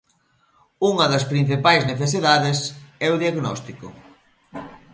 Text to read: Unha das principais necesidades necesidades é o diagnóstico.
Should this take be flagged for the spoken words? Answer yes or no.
yes